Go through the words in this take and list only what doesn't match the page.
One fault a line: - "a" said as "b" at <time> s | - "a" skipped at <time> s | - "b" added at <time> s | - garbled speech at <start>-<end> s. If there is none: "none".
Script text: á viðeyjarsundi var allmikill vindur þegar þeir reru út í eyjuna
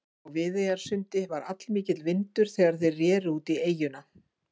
none